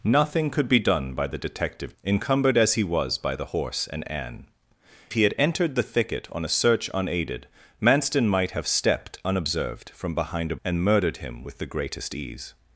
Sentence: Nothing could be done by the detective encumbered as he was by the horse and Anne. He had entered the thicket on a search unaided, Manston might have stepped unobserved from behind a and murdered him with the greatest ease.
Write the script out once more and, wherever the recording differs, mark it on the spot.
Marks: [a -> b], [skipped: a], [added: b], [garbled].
Nothing could be done by the detective encumbered as he was by the horse and Anne. He had entered the thicket on a search unaided, Manston might have stepped unobserved from behind a and murdered him with the greatest ease.